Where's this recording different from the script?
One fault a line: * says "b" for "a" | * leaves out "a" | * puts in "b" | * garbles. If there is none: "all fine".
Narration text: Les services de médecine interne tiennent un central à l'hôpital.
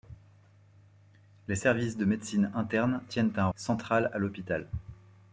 all fine